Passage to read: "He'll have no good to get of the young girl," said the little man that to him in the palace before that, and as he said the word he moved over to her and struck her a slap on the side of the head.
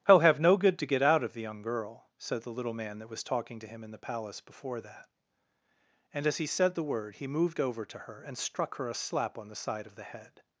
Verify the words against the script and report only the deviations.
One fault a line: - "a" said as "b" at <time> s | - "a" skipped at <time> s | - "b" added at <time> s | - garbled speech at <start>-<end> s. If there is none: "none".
- "out" added at 1.0 s
- "was talking" added at 3.1 s